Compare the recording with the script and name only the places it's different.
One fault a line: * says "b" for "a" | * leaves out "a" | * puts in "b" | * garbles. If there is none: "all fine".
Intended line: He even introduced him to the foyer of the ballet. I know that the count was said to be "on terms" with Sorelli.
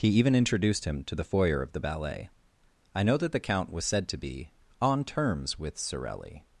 all fine